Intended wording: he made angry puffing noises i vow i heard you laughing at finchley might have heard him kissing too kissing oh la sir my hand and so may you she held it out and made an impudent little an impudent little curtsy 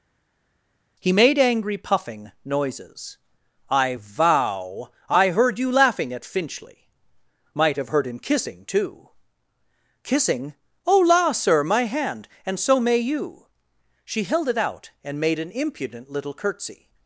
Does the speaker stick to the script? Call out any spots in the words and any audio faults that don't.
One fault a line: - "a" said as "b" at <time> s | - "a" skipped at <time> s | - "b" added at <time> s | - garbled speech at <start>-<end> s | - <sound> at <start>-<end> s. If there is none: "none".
- "an impudent little" skipped at 16.3 s